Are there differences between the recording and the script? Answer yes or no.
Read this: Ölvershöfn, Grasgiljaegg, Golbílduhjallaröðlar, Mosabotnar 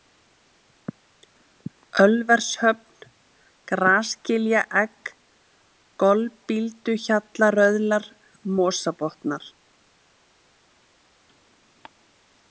no